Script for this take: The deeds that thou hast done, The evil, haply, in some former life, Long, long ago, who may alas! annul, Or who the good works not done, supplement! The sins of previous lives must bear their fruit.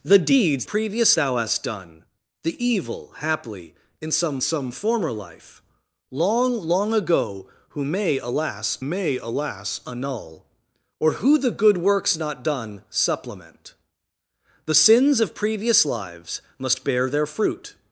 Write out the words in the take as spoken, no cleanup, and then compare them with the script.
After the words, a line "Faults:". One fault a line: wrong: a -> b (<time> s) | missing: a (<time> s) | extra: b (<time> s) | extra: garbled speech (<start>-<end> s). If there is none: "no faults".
The deeds previous thou hast done, The evil, haply, in some some former life, Long, long ago, who may alas may alas! annul, Or who the good works not done, supplement! The sins of previous lives must bear their fruit.
Faults:
wrong: that -> previous (0.6 s)
extra: some (4.4 s)
extra: may alas (8.8 s)